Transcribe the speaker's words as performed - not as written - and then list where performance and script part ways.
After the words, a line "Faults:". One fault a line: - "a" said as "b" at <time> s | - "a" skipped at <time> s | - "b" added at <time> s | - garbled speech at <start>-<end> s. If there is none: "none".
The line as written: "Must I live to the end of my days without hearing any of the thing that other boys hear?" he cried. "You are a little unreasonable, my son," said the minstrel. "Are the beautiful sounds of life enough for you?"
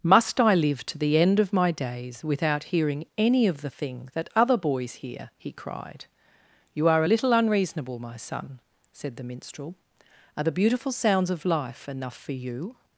"Must I live to the end of my days without hearing any of the thing that other boys hear?" he cried. "You are a little unreasonable, my son," said the minstrel. "Are the beautiful sounds of life enough for you?"
Faults:
none